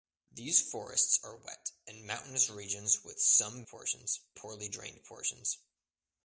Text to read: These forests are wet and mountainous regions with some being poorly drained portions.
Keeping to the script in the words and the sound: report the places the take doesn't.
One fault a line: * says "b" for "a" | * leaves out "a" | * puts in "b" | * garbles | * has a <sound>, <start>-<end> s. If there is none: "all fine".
* says "portions" for "being"